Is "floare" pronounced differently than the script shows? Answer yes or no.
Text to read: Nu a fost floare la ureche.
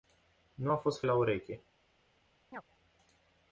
yes